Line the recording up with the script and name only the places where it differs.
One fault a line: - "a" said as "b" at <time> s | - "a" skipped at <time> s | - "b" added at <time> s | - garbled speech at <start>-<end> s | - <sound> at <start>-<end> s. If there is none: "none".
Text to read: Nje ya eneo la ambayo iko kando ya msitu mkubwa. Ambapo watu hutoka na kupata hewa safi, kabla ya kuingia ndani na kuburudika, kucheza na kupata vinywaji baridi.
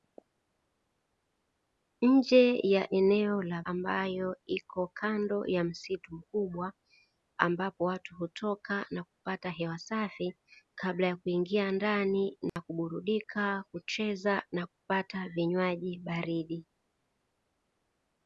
- dropout at 12.5-12.6 s